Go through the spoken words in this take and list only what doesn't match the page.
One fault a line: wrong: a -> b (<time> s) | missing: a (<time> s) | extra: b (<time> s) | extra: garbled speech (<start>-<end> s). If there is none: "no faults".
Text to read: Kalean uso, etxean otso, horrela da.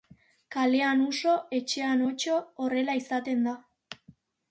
extra: izaten (3.0 s)